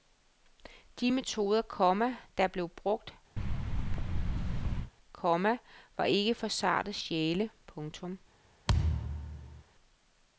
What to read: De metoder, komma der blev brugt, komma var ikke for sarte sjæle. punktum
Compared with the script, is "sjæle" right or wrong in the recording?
right